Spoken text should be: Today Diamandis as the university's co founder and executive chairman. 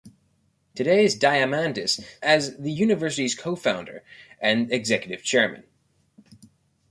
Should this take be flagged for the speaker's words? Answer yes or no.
no